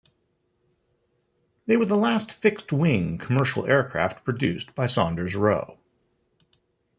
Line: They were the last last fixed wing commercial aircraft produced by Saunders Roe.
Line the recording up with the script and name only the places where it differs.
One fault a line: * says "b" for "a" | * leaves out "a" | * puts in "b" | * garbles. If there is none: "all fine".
* leaves out "last"